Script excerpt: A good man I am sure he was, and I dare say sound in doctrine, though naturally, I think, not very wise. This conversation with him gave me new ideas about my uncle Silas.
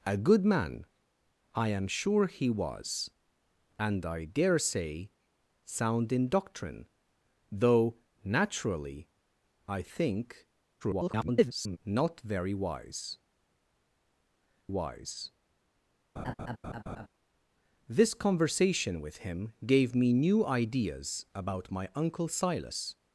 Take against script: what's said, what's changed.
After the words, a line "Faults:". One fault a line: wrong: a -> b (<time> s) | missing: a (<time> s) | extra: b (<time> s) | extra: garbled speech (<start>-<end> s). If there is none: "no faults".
A good man I am sure he was, and I dare say sound in doctrine, though naturally, I think, [garbled] not very wise wise. This conversation with him gave me new ideas about my uncle Silas.
Faults:
extra: garbled speech (10.8-11.8 s)
extra: wise (14.7 s)